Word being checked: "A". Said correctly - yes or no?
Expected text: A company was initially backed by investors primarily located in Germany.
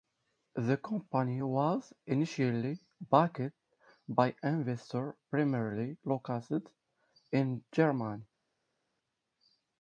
no